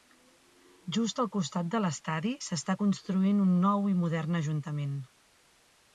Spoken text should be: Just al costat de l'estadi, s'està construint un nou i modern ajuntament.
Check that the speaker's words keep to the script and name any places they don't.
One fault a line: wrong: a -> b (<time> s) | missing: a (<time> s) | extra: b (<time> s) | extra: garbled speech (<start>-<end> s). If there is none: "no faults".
no faults